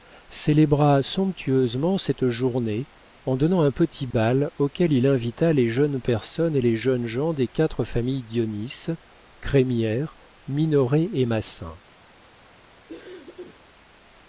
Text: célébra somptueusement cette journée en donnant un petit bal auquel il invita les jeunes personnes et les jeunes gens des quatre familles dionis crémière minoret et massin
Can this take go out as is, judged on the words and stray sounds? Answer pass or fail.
fail